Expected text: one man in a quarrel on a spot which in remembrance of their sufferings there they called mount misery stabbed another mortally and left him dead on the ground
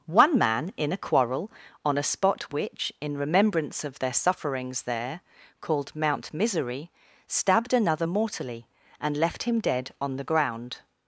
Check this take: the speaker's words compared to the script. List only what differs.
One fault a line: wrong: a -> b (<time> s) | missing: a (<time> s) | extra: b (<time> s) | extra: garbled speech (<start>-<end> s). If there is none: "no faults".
missing: they (5.2 s)